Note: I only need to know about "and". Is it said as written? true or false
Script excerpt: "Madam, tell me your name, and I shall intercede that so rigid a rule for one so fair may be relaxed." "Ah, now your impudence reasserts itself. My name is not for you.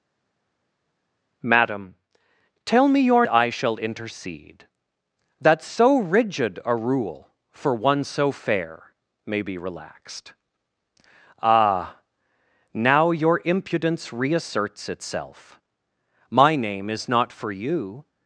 false